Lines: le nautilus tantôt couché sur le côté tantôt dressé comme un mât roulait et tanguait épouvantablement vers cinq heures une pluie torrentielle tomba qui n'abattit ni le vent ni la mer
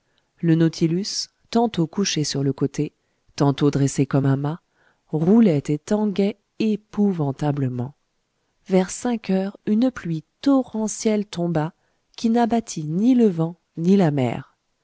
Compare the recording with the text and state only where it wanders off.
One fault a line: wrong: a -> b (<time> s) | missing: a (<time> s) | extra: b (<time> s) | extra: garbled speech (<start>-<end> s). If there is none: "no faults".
no faults